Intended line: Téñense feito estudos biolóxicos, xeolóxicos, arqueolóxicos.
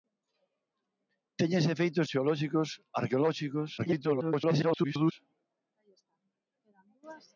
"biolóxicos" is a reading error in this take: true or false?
true